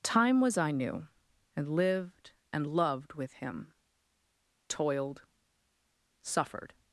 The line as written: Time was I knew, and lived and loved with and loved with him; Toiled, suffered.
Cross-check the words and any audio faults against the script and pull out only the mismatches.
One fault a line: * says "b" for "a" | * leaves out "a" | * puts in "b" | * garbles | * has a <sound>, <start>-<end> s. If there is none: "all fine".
* leaves out "and loved with"